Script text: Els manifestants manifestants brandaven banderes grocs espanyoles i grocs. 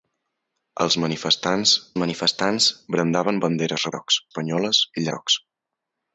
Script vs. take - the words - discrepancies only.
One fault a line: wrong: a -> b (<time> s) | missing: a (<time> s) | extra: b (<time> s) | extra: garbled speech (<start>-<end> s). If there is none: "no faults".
no faults